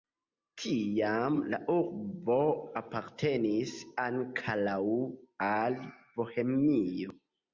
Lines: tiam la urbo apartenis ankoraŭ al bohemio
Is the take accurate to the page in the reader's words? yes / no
yes